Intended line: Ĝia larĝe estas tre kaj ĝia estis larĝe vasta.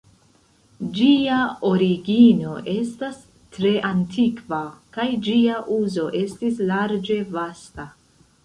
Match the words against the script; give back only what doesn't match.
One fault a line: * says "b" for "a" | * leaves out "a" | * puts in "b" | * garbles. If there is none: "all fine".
* says "origino" for "larĝe"
* puts in "antikva"
* puts in "uzo"